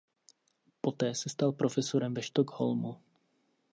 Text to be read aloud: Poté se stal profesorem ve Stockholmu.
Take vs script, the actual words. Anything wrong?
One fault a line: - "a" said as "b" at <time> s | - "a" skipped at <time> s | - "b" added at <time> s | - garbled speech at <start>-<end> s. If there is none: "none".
none